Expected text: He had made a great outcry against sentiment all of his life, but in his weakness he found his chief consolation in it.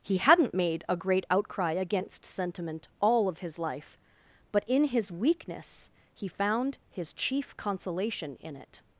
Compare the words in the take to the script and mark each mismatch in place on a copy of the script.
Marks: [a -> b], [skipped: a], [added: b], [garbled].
He [had -> hadn't] made a great outcry against sentiment all of his life, but in his weakness he found his chief consolation in it.